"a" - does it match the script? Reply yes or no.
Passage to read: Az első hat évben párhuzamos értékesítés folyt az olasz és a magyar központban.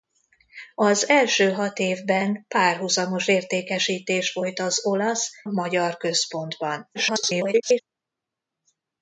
no